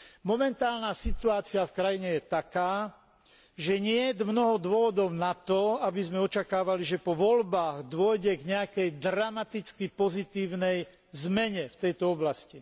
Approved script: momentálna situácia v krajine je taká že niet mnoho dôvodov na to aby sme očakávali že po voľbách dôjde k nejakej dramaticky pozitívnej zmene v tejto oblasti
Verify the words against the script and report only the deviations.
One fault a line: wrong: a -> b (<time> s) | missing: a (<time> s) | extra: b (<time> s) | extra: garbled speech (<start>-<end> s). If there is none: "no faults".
no faults